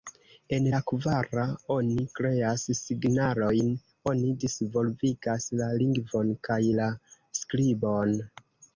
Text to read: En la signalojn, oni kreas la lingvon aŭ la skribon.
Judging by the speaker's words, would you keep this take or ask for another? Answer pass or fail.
fail